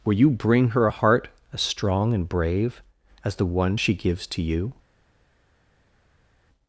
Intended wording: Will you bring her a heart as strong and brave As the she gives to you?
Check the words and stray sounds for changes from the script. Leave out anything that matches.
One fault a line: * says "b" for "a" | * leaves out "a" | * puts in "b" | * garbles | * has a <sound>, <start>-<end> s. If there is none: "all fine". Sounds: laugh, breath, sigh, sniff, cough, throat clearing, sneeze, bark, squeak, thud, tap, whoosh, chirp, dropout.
* puts in "one"